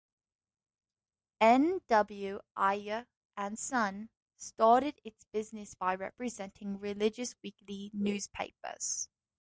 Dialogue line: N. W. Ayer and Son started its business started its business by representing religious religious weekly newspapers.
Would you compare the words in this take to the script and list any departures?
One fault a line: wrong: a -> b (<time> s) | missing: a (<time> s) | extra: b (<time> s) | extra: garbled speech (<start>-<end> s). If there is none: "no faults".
missing: started its business (5.7 s)
missing: religious (7.4 s)